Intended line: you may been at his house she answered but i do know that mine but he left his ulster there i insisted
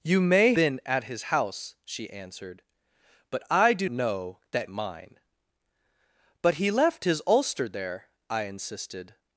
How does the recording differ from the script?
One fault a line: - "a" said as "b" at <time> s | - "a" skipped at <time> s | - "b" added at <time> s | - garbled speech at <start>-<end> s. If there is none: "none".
none